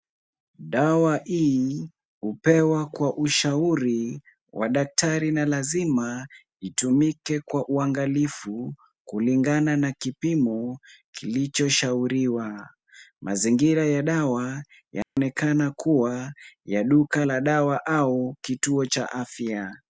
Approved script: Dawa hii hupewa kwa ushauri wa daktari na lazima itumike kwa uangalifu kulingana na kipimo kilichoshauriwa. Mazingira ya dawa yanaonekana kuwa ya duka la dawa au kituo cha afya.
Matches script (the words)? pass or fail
pass